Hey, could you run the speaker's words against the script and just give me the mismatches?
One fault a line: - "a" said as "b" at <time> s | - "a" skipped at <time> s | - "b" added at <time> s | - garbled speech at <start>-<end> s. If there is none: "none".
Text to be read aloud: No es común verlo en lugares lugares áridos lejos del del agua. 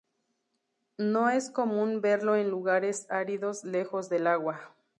- "lugares" skipped at 3.0 s
- "del" skipped at 4.2 s